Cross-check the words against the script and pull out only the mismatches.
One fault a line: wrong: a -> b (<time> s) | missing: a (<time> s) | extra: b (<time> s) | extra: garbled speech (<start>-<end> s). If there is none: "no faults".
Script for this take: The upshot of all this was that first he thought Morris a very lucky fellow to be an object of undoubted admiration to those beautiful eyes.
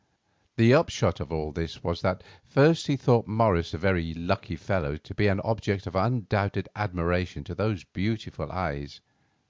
no faults